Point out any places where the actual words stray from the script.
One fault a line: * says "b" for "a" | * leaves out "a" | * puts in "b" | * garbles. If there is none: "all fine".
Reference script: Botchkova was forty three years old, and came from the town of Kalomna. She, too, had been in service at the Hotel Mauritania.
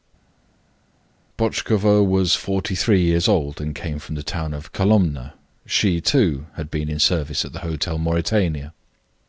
all fine